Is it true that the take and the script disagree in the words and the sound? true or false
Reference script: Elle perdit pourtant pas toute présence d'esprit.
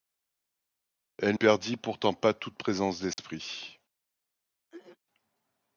true